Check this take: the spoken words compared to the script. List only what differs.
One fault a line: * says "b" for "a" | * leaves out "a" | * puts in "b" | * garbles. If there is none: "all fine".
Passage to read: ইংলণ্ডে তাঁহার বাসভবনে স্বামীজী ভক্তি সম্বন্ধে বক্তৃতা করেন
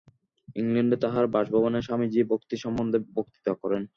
all fine